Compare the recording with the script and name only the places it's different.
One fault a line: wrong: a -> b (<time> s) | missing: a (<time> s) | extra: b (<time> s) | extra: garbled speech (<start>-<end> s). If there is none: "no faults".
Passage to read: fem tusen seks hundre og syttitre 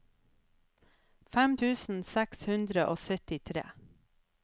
no faults